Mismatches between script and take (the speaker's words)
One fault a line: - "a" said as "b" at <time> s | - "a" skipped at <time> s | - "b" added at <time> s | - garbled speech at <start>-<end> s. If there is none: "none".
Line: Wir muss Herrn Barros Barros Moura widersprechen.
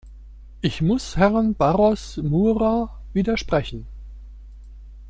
- "Wir" said as "Ich" at 0.6 s
- "Barros" skipped at 2.2 s